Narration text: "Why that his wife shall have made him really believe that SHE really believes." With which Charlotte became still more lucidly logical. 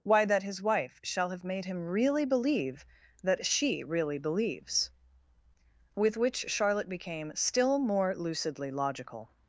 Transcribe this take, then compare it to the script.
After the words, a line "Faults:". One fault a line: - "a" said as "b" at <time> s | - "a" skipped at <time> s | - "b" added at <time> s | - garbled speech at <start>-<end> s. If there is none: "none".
"Why that his wife shall have made him really believe that SHE really believes." With which Charlotte became still more lucidly logical.
Faults:
none